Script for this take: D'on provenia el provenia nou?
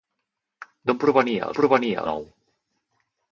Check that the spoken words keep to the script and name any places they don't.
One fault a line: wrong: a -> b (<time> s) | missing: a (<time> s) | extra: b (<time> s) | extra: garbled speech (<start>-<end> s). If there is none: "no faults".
no faults